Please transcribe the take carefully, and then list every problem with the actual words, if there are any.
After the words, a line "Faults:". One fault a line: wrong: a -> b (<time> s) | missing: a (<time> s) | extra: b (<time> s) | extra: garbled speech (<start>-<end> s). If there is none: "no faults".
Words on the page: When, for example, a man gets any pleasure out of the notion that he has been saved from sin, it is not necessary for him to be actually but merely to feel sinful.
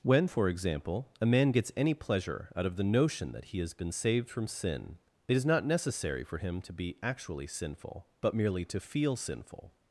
When, for example, a man gets any pleasure out of the notion that he has been saved from sin, it is not necessary for him to be actually sinful, but merely to feel sinful.
Faults:
extra: sinful (7.5 s)